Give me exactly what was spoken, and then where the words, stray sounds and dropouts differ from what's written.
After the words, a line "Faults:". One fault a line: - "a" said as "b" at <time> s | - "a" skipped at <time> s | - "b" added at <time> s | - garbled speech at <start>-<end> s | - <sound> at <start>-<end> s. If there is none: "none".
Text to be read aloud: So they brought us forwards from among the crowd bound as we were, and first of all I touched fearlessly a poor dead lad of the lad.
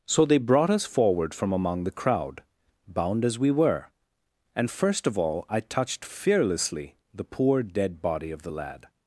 So they brought us forward from among the crowd bound as we were, and first of all I touched fearlessly the poor dead body of the lad.
Faults:
- "forwards" said as "forward" at 0.8 s
- "a" said as "the" at 7.1 s
- "lad" said as "body" at 8.0 s